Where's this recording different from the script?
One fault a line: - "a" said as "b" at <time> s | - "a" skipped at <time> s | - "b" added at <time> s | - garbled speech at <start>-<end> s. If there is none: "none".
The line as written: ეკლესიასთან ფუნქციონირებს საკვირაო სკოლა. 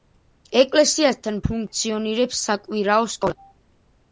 none